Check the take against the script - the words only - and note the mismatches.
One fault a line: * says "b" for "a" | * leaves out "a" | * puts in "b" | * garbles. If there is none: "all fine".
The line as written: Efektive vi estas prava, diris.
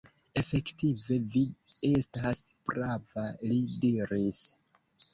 * puts in "li"